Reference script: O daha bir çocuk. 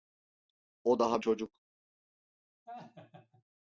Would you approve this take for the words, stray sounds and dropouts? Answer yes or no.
no